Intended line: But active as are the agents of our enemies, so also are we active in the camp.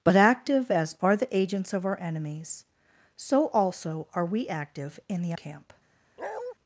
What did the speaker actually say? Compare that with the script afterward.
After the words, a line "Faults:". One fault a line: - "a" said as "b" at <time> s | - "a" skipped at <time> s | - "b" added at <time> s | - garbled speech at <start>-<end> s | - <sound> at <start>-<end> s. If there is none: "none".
But active as are the agents of our enemies, so also are we active in the camp.
Faults:
- bark at 6.2-6.5 s